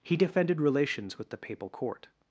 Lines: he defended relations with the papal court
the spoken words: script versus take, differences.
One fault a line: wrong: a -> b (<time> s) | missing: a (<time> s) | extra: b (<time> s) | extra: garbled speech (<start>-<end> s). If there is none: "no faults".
no faults